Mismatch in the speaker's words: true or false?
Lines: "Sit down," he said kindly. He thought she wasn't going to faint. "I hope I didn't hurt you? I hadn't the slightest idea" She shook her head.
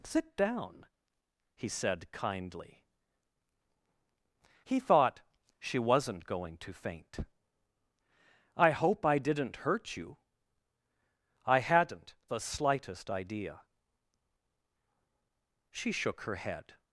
false